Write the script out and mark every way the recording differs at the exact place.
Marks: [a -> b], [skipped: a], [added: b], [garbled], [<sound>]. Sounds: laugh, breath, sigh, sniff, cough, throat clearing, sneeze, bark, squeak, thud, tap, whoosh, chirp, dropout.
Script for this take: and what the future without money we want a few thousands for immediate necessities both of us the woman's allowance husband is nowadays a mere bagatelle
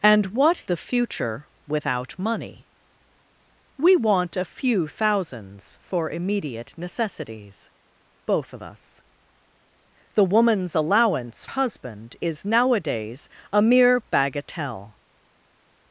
and what the future without money we want a few thousands for immediate necessities both of us the woman's allowance husband is nowadays a mere bagatelle